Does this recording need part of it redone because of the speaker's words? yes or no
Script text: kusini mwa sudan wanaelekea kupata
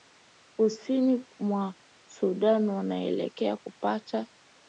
no